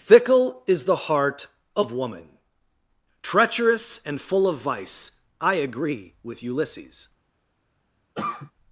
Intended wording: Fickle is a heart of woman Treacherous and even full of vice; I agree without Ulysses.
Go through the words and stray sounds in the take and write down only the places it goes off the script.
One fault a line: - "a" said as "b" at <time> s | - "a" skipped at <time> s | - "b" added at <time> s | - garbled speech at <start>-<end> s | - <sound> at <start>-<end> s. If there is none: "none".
- "a" said as "the" at 0.8 s
- "even" skipped at 4.2 s
- "without" said as "with" at 6.2 s
- cough at 8.1-8.5 s